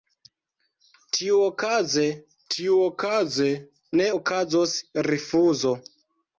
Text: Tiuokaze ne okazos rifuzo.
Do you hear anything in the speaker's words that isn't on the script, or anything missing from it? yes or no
yes